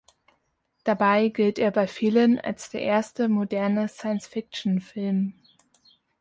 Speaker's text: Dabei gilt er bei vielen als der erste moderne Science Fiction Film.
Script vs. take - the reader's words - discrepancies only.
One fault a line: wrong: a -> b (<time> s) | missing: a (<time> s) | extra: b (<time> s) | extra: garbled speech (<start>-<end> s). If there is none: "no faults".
no faults